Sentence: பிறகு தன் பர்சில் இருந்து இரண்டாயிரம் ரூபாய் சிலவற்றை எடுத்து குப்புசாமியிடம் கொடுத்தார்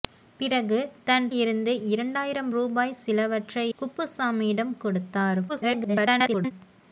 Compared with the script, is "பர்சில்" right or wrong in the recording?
wrong